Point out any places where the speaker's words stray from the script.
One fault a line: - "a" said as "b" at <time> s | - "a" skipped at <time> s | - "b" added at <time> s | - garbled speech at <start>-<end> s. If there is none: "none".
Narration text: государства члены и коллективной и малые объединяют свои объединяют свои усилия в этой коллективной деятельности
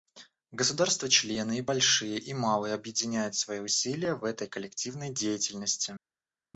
- "коллективной" said as "большие" at 1.6 s
- "объединяют свои" skipped at 3.6 s